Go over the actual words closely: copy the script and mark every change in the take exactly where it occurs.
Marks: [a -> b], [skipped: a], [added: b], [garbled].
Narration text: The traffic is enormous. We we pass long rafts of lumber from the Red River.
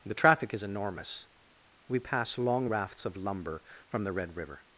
The traffic is enormous. We [skipped: we] pass long rafts of lumber from the Red River.